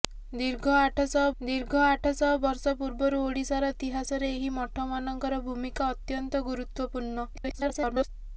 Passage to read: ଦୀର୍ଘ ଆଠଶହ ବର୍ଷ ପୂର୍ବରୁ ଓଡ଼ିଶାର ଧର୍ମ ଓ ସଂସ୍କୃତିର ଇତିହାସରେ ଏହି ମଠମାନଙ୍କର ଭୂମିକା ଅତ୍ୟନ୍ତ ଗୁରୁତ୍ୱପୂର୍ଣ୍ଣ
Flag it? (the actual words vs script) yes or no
yes